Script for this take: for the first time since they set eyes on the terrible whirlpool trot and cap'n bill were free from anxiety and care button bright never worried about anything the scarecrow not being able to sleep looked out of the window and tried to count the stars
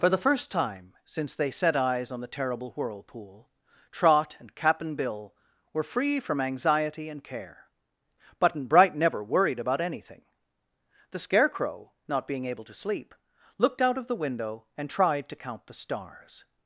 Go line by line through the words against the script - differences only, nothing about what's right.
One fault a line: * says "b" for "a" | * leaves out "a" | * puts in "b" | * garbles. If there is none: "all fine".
all fine